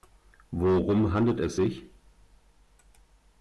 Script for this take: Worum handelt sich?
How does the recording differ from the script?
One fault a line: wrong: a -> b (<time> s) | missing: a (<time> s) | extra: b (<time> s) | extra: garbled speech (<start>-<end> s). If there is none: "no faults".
extra: es (1.4 s)